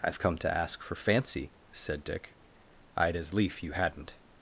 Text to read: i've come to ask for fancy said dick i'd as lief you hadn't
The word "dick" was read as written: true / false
true